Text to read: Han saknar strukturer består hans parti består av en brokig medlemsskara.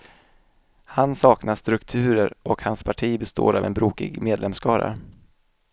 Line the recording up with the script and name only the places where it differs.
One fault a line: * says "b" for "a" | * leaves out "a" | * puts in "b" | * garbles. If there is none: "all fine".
* says "och" for "består"